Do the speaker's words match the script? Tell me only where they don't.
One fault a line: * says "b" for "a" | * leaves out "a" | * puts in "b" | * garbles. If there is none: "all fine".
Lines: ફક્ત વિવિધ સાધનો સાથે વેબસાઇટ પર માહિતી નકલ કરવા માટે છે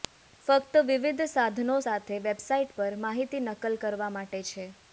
all fine